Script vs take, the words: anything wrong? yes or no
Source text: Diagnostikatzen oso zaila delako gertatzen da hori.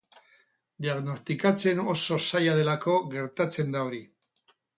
no